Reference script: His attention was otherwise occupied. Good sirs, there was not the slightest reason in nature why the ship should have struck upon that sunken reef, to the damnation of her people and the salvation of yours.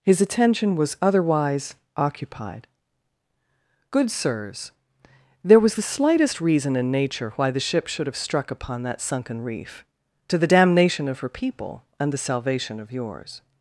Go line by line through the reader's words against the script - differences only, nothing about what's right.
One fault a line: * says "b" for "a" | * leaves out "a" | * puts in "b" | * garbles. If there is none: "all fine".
* leaves out "not"